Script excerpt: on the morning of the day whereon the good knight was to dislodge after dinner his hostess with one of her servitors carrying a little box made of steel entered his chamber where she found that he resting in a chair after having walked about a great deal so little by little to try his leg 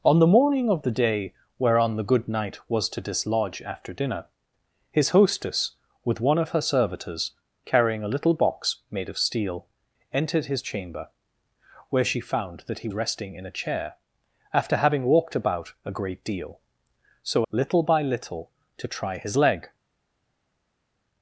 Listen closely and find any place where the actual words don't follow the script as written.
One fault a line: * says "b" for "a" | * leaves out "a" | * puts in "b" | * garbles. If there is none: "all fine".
all fine